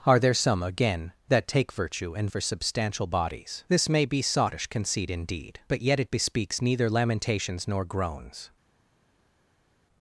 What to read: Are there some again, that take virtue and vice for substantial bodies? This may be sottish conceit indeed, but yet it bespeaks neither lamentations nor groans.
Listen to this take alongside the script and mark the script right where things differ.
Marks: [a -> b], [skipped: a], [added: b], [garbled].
Are there some again, that take virtue and [skipped: vice] for substantial bodies? This may be sottish conceit indeed, but yet it bespeaks neither lamentations nor groans.